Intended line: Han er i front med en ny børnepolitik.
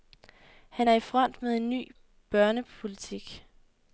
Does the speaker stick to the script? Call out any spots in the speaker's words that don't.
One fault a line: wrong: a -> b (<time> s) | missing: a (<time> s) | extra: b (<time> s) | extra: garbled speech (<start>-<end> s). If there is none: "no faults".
no faults